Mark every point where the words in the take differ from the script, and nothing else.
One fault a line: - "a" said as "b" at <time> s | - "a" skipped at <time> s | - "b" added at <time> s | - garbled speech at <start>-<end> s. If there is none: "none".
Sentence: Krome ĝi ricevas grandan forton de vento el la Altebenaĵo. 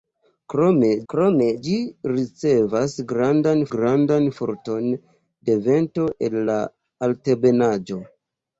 - "krome" added at 1.1 s
- "grandan" added at 3.7 s